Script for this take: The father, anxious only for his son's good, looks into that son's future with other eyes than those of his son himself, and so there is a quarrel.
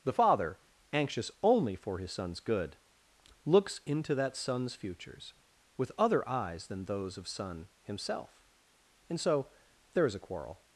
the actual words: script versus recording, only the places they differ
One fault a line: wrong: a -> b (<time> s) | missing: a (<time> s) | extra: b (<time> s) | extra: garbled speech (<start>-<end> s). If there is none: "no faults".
wrong: future -> futures (4.7 s)
missing: his (7.3 s)